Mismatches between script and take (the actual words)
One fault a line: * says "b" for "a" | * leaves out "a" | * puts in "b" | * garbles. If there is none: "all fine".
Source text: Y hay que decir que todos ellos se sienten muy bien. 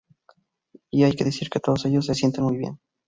all fine